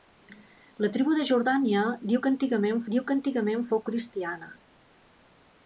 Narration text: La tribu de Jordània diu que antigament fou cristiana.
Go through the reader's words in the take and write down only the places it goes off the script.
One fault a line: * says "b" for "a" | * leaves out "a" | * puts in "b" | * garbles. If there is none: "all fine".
* puts in "diu que antigament"